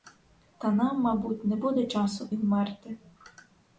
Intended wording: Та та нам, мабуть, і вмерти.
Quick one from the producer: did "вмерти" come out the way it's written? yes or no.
yes